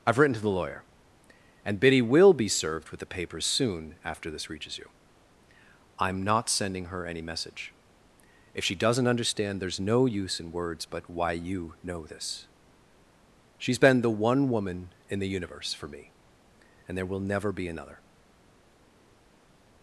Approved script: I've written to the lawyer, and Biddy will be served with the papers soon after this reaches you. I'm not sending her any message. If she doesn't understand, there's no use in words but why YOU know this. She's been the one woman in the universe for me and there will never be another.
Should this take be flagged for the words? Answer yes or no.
no